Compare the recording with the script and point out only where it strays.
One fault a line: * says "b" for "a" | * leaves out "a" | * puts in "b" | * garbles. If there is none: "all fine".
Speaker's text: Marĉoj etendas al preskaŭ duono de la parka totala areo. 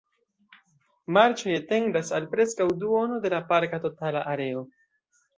all fine